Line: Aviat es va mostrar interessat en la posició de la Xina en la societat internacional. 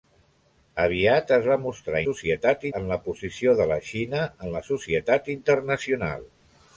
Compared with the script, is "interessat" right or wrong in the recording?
wrong